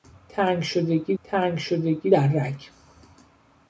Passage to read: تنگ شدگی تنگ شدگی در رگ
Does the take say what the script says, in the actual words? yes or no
yes